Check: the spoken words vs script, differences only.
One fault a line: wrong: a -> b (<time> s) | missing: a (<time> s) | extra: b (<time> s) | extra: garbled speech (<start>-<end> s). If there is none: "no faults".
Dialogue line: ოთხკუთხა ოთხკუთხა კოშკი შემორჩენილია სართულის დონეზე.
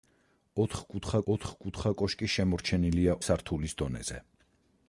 no faults